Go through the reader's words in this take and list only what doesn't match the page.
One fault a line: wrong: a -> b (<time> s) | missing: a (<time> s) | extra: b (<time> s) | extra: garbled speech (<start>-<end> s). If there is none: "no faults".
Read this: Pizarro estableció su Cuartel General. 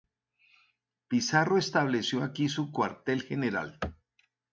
extra: aquí (2.2 s)